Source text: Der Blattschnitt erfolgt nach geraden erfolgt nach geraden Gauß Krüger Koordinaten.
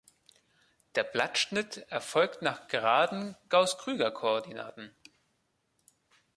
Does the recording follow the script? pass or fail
fail